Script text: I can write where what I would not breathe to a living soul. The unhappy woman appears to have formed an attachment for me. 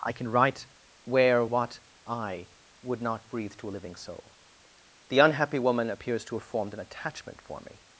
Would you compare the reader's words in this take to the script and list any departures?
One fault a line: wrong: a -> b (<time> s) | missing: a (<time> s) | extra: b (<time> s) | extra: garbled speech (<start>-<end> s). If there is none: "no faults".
no faults